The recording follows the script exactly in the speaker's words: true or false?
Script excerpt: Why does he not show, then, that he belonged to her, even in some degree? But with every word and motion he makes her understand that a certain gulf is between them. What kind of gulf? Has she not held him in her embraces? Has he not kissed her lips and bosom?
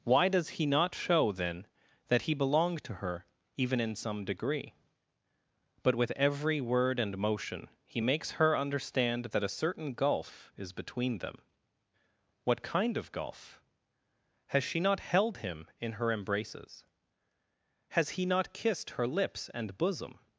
true